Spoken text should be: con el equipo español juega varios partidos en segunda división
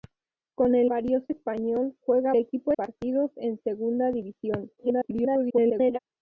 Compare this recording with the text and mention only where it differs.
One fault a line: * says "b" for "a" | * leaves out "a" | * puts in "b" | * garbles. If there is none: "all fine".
* says "varios" for "equipo"
* says "equipo" for "varios"
* garbles